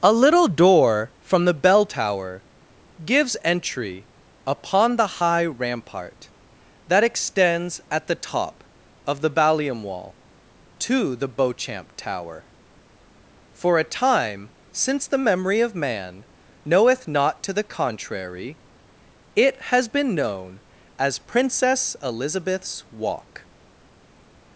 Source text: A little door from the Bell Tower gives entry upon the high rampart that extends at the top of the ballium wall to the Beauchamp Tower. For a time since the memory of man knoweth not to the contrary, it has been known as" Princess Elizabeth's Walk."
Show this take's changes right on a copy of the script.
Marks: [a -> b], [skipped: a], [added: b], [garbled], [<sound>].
A little door from the Bell Tower gives entry upon the high rampart that extends at the top of the ballium wall to the Beauchamp Tower. For a time since the memory of man knoweth not to the contrary, it has been known as" Princess Elizabeth's Walk."